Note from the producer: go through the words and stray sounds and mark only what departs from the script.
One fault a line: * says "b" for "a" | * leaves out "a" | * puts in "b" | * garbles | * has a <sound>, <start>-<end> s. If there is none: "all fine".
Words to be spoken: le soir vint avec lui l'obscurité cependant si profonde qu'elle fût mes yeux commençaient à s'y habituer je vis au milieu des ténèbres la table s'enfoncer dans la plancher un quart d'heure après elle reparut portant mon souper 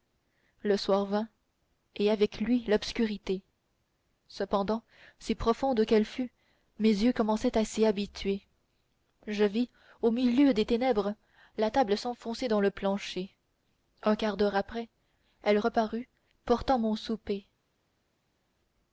* puts in "et"
* says "le" for "la"